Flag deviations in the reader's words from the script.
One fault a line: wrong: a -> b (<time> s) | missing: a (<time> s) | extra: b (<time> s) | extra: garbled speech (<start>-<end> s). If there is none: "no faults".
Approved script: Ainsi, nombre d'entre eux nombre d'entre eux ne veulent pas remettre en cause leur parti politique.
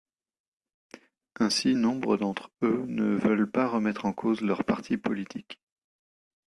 missing: nombre d'entre eux (2.9 s)